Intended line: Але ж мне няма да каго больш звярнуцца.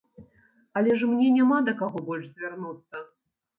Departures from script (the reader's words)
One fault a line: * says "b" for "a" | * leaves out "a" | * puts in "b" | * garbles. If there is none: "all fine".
all fine